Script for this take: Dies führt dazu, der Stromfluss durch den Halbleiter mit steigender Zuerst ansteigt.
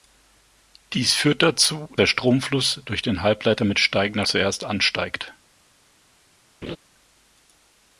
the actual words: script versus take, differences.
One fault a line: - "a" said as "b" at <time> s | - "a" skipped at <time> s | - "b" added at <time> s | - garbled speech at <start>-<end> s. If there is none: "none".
none